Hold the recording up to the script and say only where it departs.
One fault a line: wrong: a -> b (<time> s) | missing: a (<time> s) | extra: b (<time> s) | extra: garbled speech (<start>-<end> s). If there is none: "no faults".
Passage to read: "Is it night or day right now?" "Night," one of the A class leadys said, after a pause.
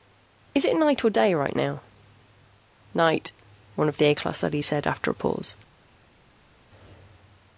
no faults